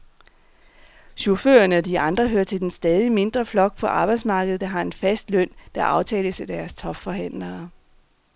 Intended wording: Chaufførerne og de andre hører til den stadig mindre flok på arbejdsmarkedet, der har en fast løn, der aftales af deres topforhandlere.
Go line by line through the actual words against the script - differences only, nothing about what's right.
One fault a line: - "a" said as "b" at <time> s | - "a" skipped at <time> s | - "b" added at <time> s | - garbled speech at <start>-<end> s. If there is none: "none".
none